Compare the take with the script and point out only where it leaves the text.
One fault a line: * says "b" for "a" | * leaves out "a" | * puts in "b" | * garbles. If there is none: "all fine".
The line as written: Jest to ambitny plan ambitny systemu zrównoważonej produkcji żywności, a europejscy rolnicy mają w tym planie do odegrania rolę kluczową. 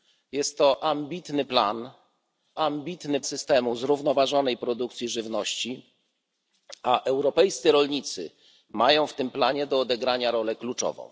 all fine